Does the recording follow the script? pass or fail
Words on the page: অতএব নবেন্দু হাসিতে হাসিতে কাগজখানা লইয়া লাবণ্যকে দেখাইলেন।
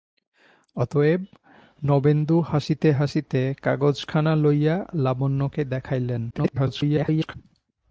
fail